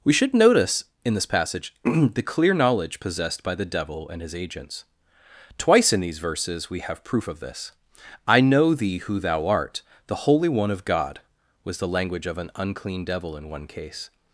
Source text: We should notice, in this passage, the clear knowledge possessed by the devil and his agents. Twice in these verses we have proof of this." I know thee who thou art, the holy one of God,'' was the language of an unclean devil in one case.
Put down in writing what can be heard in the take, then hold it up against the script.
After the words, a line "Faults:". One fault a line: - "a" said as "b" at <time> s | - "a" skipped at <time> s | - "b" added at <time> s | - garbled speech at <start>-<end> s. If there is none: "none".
We should notice, in this passage, the clear knowledge possessed by the devil and his agents. Twice in these verses we have proof of this." I know thee who thou art, the holy one of God,'' was the language of an unclean devil in one case.
Faults:
none